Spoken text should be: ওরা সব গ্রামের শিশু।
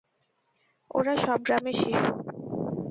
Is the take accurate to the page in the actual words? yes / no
yes